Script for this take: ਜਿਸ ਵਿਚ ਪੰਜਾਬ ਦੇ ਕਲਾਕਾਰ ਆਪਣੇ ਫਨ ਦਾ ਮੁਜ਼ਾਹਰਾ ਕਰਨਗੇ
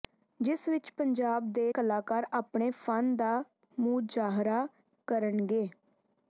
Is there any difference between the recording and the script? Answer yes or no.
no